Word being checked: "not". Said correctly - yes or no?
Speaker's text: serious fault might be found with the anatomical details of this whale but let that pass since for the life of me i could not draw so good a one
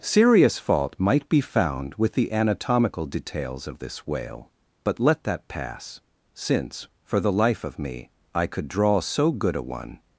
no